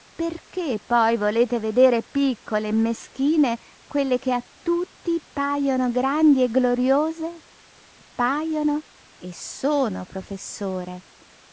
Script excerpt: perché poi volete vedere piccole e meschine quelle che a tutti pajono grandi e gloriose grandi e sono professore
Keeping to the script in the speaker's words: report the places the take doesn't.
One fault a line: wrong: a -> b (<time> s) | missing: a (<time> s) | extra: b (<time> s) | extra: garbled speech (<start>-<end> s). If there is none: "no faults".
wrong: grandi -> pajono (8.2 s)